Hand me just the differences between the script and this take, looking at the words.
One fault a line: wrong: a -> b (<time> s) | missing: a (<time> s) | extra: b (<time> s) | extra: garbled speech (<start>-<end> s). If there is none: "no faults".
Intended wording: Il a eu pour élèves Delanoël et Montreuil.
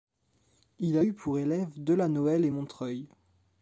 no faults